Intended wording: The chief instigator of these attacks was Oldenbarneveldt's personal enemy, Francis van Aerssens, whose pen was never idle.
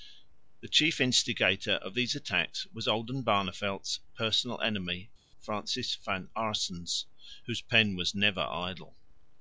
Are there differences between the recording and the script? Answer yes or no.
no